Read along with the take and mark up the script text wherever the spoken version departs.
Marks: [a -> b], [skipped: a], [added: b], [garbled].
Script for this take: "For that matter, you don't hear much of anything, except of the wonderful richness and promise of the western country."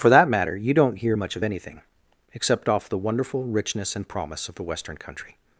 "For that matter, you don't hear much of anything, except [of -> off] the wonderful richness and promise of the western country."